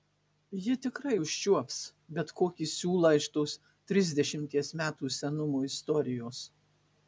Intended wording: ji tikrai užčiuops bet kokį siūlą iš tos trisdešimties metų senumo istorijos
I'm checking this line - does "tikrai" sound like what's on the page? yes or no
yes